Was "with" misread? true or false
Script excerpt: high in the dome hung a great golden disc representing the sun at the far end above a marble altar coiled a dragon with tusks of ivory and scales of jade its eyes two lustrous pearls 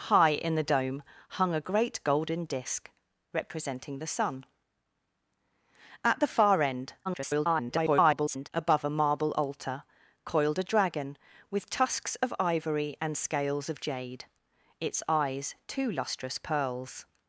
false